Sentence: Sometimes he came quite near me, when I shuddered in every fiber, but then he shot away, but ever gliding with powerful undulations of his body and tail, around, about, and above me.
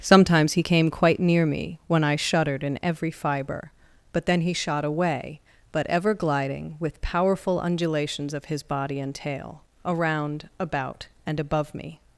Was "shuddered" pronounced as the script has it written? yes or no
yes